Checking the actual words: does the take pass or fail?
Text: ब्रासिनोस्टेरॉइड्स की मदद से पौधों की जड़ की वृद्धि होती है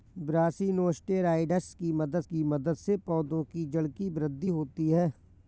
fail